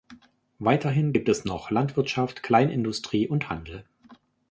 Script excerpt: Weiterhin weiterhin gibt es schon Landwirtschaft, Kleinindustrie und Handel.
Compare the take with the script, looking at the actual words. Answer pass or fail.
fail